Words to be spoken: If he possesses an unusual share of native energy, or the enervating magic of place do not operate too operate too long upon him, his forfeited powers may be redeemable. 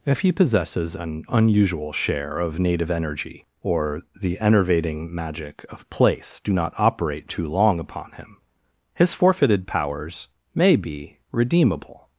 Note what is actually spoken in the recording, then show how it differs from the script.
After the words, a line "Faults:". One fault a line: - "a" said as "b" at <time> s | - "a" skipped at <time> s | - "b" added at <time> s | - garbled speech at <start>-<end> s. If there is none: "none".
If he possesses an unusual share of native energy, or the enervating magic of place do not operate too long upon him, his forfeited powers may be redeemable.
Faults:
- "operate too" skipped at 7.5 s